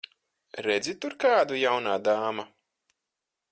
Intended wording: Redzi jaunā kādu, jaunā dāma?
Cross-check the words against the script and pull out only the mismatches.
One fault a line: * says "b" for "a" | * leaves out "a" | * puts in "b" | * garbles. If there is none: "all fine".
* says "tur" for "jaunā"